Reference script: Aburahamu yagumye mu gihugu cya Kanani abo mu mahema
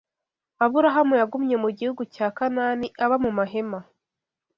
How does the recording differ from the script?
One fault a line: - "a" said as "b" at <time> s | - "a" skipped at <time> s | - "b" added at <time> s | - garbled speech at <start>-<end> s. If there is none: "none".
- "abo" said as "aba" at 3.0 s